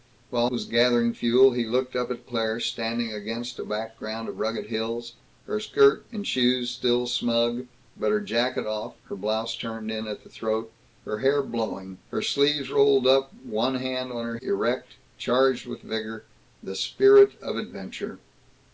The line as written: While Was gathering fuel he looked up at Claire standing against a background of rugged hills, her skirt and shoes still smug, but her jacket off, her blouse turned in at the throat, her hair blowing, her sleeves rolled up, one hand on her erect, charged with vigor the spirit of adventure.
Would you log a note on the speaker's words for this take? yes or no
no